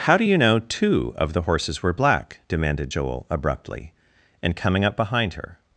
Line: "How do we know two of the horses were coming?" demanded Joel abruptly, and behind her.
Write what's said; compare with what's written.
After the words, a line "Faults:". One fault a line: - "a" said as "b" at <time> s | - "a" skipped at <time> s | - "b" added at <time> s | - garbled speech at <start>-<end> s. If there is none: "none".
"How do you know two of the horses were black?" demanded Joel abruptly, and coming up behind her.
Faults:
- "we" said as "you" at 0.2 s
- "coming" said as "black" at 1.9 s
- "coming up" added at 4.5 s